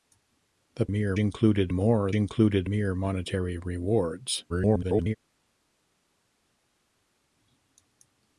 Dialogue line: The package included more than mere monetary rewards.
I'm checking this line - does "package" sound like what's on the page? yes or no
no